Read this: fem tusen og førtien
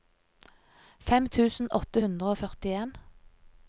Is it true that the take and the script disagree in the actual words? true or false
true